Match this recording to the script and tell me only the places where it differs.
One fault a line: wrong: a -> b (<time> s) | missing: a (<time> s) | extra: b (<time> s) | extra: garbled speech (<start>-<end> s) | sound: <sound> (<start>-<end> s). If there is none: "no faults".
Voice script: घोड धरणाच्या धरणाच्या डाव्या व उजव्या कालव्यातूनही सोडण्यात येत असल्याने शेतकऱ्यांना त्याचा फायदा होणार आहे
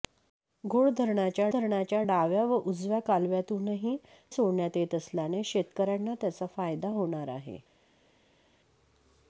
no faults